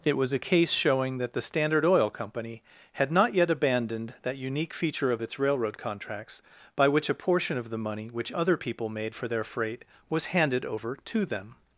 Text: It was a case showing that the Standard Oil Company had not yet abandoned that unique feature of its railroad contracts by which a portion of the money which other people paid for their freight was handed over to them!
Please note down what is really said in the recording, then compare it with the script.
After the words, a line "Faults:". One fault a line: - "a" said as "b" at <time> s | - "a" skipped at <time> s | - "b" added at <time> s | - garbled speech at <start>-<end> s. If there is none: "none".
It was a case showing that the Standard Oil Company had not yet abandoned that unique feature of its railroad contracts by which a portion of the money which other people made for their freight was handed over to them!
Faults:
- "paid" said as "made" at 8.9 s